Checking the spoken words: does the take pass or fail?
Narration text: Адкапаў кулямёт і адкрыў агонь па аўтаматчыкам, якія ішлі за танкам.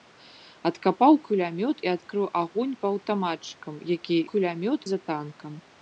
fail